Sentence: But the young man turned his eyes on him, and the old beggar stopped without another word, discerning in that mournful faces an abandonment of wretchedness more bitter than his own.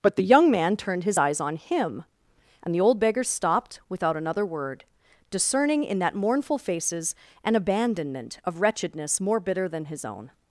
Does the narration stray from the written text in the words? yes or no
no